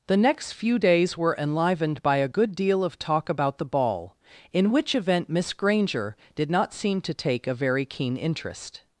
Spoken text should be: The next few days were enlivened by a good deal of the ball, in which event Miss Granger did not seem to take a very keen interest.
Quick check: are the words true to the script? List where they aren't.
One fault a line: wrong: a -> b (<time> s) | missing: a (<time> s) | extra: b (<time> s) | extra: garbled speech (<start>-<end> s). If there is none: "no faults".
extra: talk about (3.0 s)